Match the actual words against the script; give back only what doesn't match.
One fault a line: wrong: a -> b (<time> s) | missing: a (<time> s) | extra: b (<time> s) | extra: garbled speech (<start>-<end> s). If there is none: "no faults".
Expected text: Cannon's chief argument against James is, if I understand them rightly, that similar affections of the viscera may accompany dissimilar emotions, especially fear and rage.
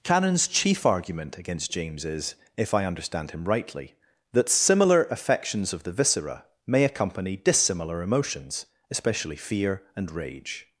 wrong: them -> him (3.3 s)